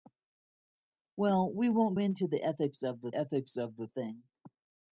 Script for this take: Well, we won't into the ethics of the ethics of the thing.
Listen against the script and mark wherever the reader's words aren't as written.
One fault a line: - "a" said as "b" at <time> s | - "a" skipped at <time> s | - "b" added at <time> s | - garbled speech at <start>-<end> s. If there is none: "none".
none